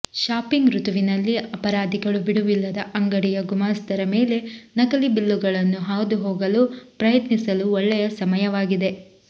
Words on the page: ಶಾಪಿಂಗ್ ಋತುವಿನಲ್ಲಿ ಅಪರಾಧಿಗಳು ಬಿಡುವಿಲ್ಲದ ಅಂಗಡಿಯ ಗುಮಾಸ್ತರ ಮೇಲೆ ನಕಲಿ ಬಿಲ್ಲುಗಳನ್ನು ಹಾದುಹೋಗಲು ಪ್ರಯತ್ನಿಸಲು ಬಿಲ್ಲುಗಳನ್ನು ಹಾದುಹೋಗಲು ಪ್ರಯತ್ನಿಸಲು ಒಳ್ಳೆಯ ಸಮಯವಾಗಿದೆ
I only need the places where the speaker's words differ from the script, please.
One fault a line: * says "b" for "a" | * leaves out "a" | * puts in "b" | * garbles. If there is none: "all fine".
* leaves out "ಬಿಲ್ಲುಗಳನ್ನು ಹಾದುಹೋಗಲು ಪ್ರಯತ್ನಿಸಲು"